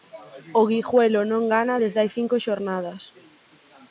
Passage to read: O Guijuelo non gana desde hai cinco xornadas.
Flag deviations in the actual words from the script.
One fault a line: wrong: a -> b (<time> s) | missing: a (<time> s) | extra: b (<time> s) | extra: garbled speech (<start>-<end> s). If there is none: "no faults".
no faults